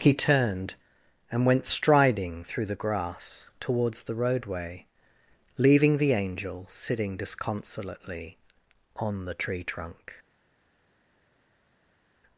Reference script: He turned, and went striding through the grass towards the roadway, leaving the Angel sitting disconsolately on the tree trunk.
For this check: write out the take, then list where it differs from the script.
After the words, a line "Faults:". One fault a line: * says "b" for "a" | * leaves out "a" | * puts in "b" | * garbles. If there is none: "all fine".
He turned, and went striding through the grass towards the roadway, leaving the Angel sitting disconsolately on the tree trunk.
Faults:
all fine